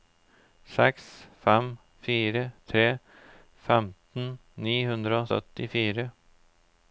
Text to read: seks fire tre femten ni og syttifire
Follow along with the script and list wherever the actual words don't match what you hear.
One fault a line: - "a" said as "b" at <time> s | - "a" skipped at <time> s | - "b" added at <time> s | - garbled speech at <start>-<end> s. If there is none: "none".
- "fem" added at 1.4 s
- "hundre" added at 4.9 s